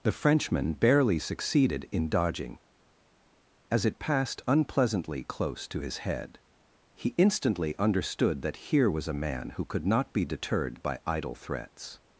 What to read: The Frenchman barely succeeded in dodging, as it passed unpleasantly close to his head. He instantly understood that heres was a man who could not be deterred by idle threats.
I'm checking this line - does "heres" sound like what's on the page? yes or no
no